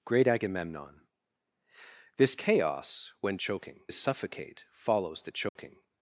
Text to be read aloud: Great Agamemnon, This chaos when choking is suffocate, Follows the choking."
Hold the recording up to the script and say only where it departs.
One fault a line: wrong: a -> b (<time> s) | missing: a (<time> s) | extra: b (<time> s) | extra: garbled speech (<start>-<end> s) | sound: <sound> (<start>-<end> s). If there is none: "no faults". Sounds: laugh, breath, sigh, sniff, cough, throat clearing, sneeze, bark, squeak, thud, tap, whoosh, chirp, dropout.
sound: dropout (5.5-5.6 s)